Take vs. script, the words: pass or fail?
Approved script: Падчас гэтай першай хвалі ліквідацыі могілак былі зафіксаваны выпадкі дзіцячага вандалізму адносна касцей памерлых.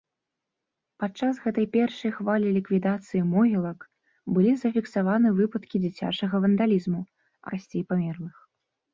fail